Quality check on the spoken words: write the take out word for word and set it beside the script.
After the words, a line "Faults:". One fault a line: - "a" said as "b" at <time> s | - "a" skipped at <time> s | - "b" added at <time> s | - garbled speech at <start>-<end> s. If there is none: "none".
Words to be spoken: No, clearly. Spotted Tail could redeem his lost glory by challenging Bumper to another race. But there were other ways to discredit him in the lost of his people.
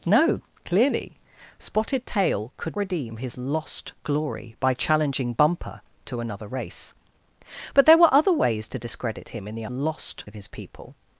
No, clearly. Spotted Tail could redeem his lost glory by challenging Bumper to another race. But there were other ways to discredit him in the lost of his people.
Faults:
none